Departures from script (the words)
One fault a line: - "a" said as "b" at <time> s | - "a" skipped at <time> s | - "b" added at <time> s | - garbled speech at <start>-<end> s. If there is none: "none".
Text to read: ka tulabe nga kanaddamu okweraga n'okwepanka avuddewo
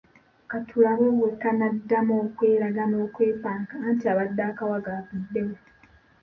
- "nga" said as "bwe" at 1.2 s
- "anti abadde akawaga" added at 3.9 s